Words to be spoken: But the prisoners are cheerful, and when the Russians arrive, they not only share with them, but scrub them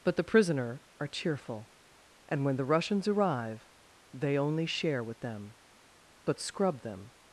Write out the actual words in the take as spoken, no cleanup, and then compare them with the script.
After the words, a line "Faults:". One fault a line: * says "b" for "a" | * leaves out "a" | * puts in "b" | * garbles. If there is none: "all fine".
But the prisoner are cheerful, and when the Russians arrive, they only share with them, but scrub them
Faults:
* says "prisoner" for "prisoners"
* leaves out "not"